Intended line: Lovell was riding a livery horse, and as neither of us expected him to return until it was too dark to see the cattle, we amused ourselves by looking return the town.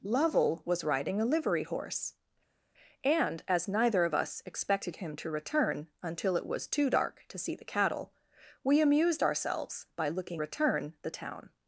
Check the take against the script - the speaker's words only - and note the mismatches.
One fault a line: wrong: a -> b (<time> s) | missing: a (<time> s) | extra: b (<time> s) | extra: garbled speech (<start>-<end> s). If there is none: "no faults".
no faults